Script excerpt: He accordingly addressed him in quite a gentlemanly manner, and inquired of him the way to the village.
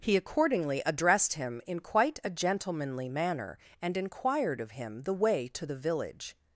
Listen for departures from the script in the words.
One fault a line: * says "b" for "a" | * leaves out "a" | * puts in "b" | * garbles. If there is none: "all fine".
all fine